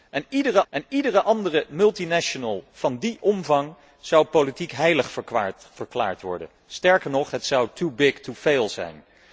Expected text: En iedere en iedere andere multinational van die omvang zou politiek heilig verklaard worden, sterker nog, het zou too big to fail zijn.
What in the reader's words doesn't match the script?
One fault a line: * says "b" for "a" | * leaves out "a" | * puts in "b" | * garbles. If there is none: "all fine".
all fine